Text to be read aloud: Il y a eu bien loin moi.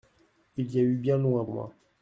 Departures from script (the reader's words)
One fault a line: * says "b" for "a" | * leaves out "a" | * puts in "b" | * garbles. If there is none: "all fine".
all fine